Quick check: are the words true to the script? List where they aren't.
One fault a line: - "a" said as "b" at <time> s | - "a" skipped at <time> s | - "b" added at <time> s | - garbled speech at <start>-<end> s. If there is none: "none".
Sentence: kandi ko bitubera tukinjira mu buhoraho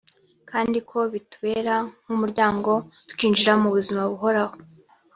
- "nk'umuryango" added at 2.0 s
- "buzima" added at 3.8 s